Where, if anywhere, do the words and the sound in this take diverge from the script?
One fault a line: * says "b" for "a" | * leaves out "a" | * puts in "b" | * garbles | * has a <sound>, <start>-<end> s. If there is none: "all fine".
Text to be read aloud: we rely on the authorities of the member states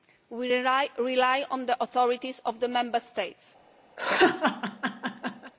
* has a laugh, 4.0-5.5 s